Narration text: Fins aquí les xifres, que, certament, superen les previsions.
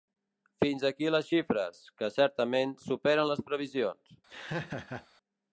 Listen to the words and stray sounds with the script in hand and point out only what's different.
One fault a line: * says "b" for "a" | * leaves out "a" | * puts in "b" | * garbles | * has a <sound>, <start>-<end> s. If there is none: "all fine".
* has a laugh, 4.3-5.1 s